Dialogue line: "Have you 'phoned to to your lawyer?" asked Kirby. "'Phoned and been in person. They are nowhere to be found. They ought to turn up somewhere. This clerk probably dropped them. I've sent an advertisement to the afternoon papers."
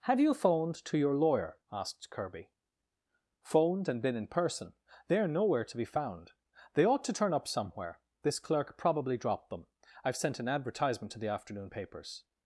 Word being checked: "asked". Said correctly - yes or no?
yes